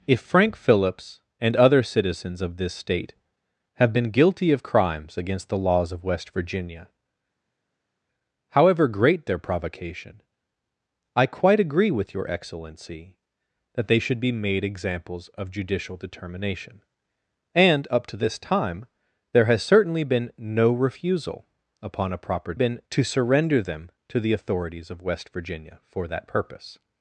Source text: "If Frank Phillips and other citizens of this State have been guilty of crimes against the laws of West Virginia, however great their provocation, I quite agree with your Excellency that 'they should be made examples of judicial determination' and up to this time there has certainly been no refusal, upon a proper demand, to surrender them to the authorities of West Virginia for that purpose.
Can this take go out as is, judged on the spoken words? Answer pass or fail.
fail